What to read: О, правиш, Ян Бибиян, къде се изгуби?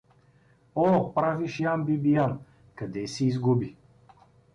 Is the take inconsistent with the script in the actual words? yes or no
no